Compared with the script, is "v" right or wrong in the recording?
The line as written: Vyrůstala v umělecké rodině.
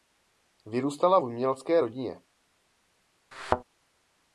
right